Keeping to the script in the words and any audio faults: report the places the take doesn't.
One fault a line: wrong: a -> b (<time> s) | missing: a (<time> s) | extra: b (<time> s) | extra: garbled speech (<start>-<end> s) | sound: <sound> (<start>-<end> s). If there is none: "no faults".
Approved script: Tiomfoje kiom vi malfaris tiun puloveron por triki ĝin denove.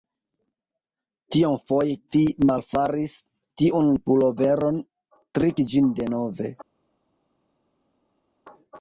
missing: kiom (2.0 s)
missing: por (4.8 s)